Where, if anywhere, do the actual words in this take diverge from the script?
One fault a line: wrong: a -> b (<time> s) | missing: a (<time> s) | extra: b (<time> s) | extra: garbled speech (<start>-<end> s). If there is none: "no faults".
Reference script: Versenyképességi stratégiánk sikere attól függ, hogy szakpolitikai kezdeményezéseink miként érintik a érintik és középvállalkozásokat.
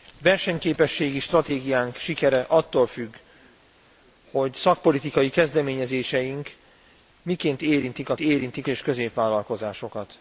no faults